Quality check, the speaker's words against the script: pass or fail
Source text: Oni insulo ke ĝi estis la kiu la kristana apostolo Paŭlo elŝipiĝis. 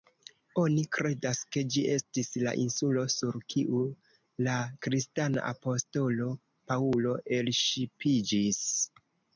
fail